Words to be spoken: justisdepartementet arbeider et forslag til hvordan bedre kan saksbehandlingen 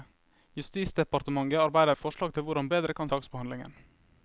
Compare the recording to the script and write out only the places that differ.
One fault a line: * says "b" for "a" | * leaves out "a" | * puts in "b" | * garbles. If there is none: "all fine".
all fine